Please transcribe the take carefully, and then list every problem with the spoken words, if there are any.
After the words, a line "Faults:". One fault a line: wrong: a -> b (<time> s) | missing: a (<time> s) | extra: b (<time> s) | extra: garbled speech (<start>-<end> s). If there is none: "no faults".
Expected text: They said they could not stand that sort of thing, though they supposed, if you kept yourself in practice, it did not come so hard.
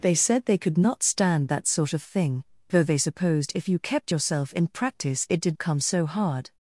They said they could not stand that sort of thing, though they supposed, if you kept yourself in practice, it did come so hard.
Faults:
missing: not (5.6 s)